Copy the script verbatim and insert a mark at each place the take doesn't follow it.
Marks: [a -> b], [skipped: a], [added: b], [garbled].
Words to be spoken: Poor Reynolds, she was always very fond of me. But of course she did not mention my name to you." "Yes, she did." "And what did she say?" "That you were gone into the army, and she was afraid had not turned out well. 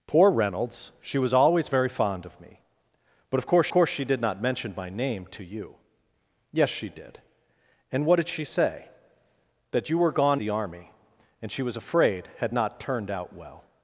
Poor Reynolds, she was always very fond of me. But of course [added: course] she did not mention my name to you." "Yes, she did." "And what did she say?" "That you were gone [skipped: into] the army, and she was afraid had not turned out well.